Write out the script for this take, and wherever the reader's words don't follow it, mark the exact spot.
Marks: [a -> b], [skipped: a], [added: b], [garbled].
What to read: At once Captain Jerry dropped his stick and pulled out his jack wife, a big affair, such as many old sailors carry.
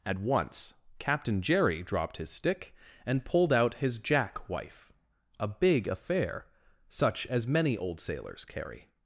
At once Captain Jerry dropped his stick and pulled out his jack wife, a big affair, such as many old sailors carry.